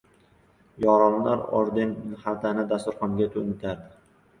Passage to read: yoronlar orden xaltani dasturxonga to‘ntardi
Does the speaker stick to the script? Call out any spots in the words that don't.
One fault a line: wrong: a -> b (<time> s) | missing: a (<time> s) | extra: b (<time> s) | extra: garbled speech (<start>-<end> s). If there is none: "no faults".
no faults